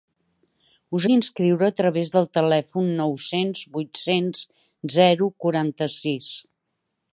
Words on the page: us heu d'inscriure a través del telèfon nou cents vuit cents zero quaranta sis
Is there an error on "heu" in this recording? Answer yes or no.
yes